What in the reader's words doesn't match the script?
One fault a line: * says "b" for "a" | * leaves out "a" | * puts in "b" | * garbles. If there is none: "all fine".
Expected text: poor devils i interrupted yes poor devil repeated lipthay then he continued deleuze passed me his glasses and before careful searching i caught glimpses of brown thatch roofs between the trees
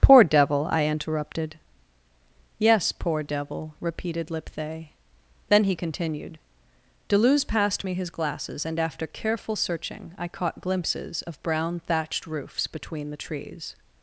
* says "devil" for "devils"
* says "after" for "before"
* says "thatched" for "thatch"